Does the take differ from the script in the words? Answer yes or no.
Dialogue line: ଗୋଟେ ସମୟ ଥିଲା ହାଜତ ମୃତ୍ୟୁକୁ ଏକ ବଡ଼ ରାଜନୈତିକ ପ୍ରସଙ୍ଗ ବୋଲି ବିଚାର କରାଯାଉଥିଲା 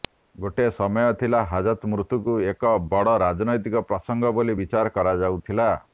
no